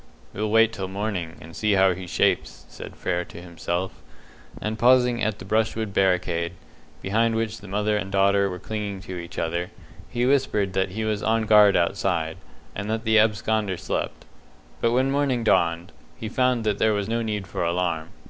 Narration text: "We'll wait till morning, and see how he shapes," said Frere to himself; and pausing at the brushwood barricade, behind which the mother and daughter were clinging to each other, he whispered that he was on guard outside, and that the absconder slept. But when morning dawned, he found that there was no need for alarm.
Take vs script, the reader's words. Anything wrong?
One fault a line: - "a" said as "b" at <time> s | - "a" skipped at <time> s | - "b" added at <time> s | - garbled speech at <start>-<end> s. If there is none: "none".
none